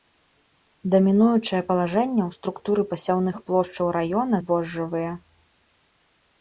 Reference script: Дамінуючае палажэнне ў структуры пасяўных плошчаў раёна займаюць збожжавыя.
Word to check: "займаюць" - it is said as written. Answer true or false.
false